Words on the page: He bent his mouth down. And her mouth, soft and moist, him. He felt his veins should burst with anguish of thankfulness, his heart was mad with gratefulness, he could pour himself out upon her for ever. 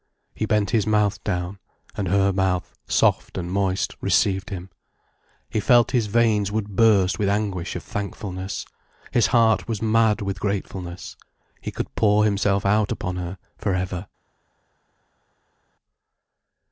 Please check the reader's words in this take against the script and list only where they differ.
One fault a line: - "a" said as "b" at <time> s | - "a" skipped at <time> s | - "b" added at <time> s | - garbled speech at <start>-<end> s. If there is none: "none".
- "received" added at 4.0 s
- "should" said as "would" at 6.5 s